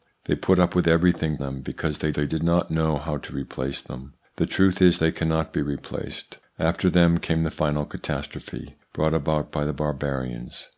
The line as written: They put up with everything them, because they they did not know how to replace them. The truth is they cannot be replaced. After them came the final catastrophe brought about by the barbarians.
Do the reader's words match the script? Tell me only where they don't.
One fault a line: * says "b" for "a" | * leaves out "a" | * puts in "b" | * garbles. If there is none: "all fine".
all fine